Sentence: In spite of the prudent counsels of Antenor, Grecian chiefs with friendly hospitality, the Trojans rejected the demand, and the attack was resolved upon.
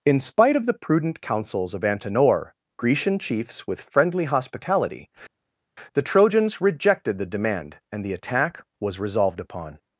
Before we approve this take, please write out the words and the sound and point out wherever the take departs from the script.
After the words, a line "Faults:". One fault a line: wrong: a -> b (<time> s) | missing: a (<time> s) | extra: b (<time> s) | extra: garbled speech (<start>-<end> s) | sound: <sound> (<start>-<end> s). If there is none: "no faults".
In spite of the prudent counsels of Antenor, Grecian chiefs with friendly hospitality, the Trojans rejected the demand, and the attack was resolved upon.
Faults:
no faults